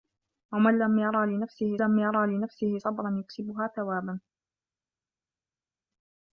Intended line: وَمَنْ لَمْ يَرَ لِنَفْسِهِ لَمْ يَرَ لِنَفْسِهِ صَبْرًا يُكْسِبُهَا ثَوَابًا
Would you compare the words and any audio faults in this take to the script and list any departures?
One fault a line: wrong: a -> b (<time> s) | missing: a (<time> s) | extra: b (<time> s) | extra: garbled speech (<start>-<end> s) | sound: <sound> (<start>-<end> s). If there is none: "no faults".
no faults